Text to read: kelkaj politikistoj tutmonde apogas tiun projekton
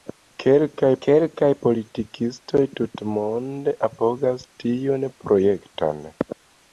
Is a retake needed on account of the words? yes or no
yes